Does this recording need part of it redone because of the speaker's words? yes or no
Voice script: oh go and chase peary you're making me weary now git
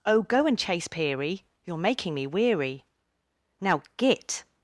no